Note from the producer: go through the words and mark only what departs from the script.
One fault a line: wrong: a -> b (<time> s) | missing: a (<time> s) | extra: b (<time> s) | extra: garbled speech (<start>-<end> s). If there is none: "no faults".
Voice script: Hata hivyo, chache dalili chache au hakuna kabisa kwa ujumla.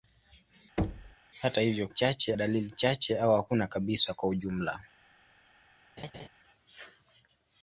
no faults